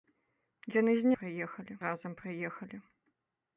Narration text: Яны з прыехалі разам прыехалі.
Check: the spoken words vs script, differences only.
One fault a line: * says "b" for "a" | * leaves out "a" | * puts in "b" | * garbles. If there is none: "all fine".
all fine